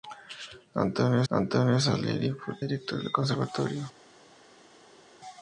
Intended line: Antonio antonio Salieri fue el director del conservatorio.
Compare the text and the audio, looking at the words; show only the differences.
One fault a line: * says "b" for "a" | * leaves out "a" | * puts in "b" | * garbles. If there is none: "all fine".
all fine